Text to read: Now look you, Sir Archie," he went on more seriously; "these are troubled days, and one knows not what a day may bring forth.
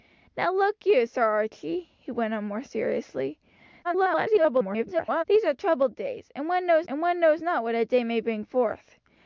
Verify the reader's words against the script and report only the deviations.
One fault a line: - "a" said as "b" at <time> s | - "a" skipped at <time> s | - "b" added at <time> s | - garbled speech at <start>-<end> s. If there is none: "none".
- garbled speech at 3.8-5.2 s
- "and one knows" added at 6.9 s